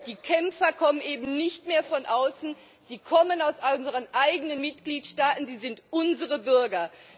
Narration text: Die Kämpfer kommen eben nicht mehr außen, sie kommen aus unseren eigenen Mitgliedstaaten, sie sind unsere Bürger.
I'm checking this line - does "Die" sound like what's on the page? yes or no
yes